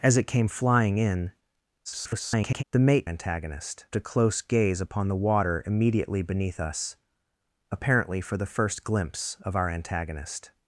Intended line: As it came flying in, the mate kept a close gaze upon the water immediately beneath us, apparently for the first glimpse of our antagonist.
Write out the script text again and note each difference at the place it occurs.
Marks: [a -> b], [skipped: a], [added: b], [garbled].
As it came flying in, [garbled] the mate [kept -> antagonist] a close gaze upon the water immediately beneath us, apparently for the first glimpse of our antagonist.